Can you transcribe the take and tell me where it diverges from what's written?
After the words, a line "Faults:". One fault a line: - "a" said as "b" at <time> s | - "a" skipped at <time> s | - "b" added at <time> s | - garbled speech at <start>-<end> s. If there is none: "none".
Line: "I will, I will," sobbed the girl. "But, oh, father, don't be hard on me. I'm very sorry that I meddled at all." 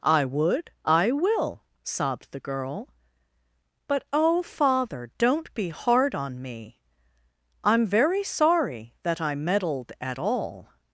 "I would, I will," sobbed the girl. "But, oh, father, don't be hard on me. I'm very sorry that I meddled at all."
Faults:
- "will" said as "would" at 0.2 s